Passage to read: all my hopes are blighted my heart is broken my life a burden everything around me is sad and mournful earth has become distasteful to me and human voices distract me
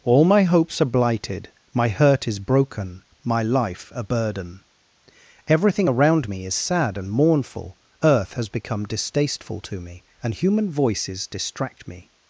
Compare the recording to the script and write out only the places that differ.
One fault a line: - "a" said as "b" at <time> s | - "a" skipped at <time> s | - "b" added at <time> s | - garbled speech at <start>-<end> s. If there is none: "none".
- "heart" said as "hurt" at 1.9 s